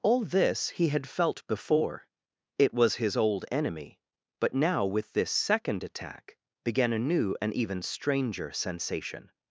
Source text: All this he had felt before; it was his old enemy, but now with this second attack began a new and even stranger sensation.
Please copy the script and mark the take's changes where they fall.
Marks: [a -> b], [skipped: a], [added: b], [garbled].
All this he had felt before; it was his old enemy, but now with this second attack began a new and even stranger sensation.